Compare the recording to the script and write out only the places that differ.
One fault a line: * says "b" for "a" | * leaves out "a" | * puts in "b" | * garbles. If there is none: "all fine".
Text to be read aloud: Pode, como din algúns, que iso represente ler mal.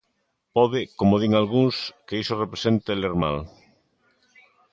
all fine